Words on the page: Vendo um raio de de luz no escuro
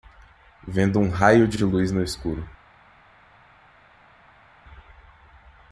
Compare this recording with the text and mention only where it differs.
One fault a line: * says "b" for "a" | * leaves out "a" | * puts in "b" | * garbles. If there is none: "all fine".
all fine